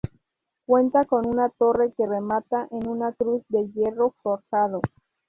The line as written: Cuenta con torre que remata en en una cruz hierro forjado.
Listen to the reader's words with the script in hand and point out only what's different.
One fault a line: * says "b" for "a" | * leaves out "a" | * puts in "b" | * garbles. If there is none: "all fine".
* puts in "una"
* leaves out "en"
* puts in "de"